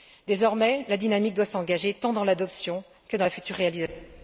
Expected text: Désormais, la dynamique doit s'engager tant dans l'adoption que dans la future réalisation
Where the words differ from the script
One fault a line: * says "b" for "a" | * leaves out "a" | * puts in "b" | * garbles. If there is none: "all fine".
all fine